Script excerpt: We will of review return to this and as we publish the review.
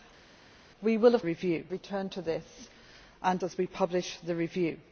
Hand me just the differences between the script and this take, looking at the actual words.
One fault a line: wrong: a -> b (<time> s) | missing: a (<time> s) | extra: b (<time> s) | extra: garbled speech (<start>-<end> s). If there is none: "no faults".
no faults